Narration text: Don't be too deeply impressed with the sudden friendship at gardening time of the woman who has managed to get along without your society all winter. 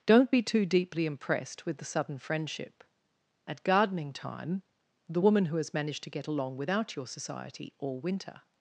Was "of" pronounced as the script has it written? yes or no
no